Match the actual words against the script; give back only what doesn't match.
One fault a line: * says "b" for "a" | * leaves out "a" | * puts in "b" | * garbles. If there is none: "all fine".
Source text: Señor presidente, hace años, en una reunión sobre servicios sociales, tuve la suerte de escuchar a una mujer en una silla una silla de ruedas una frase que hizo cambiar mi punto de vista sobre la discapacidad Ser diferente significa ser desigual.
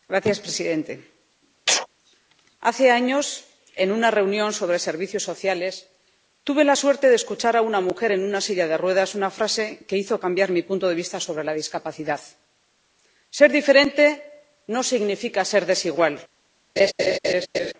* leaves out "una silla"
* puts in "no"